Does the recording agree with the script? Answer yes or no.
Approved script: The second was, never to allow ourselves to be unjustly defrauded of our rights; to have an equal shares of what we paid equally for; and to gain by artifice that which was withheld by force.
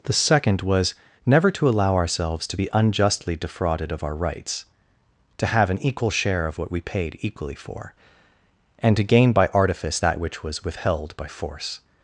no